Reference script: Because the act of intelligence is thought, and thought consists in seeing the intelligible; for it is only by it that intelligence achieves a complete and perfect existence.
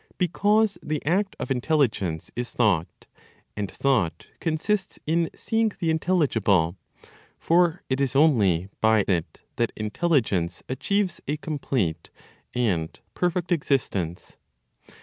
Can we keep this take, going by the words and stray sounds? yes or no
yes